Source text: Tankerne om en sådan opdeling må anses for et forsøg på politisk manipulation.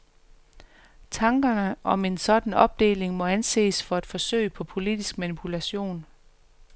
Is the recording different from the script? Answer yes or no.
no